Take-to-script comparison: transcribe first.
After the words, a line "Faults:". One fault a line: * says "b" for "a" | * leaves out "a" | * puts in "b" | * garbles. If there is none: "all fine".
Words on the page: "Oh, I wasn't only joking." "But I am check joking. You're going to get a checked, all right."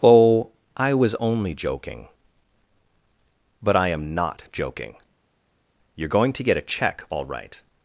"Oh, I was only joking." "But I am not joking. You're going to get a check, all right."
Faults:
* says "was" for "wasn't"
* says "not" for "check"
* says "check" for "checked"